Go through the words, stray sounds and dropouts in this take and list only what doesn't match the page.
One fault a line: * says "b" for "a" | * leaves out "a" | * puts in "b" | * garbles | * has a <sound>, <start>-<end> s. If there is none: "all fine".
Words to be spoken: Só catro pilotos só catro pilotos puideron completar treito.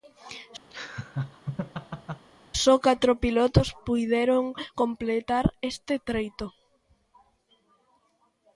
* has a laugh, 0.7-2.3 s
* leaves out "só catro pilotos"
* puts in "este"